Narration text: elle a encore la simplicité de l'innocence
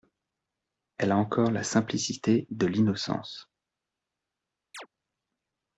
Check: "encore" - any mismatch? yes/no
no